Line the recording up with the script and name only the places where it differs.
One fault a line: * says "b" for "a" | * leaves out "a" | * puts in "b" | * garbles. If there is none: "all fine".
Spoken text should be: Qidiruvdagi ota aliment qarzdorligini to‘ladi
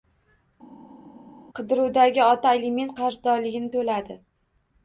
all fine